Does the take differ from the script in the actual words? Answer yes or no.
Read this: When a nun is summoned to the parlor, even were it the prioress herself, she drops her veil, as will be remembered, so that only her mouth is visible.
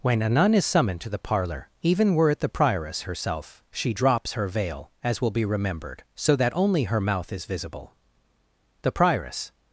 yes